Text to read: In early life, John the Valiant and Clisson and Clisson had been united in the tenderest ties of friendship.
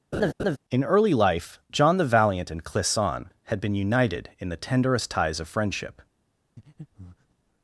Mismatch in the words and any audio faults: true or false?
true